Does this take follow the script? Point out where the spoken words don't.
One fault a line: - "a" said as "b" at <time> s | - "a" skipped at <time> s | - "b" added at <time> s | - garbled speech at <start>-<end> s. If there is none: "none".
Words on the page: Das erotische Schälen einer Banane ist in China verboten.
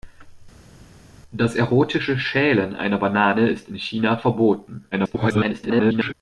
- garbled speech at 4.9-6.1 s